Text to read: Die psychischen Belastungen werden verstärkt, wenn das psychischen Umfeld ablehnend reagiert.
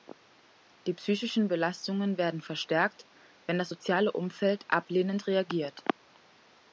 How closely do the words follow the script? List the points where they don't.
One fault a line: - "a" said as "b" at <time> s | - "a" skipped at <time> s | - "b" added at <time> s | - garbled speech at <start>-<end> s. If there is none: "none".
- "psychischen" said as "soziale" at 3.7 s